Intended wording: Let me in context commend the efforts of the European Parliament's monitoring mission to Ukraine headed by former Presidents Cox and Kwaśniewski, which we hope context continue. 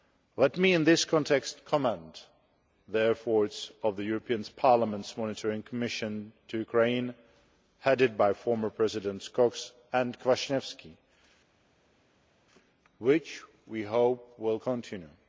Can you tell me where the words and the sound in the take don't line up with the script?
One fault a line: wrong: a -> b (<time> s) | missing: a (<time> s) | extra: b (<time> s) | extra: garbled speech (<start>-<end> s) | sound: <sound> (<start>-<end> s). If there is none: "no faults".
extra: this (0.8 s)
wrong: context -> will (14.4 s)